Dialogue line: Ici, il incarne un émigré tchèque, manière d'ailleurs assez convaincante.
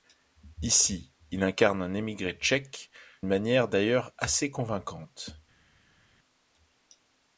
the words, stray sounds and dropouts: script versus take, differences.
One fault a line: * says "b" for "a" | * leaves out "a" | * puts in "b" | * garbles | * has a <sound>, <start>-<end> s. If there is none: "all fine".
all fine